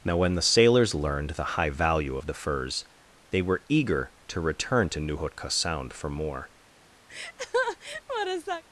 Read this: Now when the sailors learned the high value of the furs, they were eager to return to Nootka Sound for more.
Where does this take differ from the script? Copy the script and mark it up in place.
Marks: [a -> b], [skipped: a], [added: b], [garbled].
Now when the sailors learned the high value of the furs, they were eager to return to Nootka Sound for more.